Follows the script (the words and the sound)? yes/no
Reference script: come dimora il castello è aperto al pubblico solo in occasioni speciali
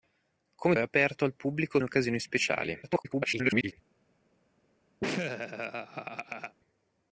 no